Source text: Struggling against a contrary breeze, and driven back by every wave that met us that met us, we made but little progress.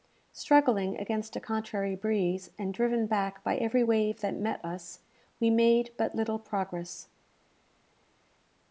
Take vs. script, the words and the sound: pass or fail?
fail